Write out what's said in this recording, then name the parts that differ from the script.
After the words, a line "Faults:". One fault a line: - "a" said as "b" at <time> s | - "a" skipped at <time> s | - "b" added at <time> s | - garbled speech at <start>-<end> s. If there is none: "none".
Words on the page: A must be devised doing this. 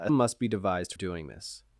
A must be devised doing this.
Faults:
none